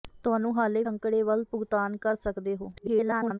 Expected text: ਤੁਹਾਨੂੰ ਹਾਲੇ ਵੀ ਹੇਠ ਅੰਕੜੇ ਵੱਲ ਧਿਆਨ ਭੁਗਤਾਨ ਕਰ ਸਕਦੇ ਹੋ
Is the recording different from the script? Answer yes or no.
yes